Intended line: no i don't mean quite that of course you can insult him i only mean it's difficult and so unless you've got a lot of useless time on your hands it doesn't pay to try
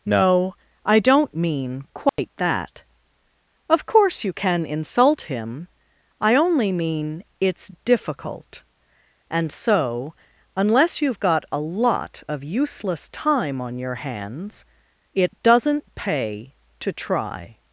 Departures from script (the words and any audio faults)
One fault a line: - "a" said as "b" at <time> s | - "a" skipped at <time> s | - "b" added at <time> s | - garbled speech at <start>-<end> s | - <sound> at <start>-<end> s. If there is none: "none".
- dropout at 2.1-2.2 s